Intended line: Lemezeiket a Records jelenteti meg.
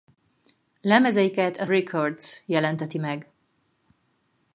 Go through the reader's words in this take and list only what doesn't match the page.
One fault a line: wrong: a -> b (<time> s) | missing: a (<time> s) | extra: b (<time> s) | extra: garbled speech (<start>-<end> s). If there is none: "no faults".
no faults